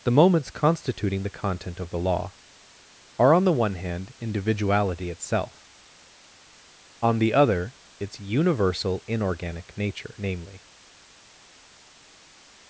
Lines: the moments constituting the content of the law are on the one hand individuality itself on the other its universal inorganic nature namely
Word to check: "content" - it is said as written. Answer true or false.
true